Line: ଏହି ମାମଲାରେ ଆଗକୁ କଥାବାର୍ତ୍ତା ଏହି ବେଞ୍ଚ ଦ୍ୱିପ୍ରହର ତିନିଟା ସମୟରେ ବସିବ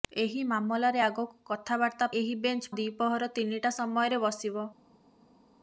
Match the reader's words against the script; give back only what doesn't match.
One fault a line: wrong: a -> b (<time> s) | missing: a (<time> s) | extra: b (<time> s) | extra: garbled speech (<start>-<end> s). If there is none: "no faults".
no faults